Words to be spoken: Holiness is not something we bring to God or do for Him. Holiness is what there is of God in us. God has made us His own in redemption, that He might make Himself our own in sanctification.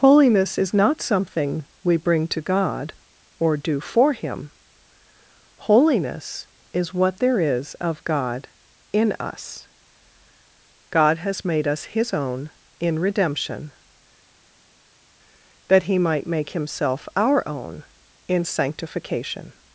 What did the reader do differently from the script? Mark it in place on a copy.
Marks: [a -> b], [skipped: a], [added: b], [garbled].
Holiness is not something we bring to God or do for Him. Holiness is what there is of God in us. God has made us His own in redemption, that He might make Himself our own in sanctification.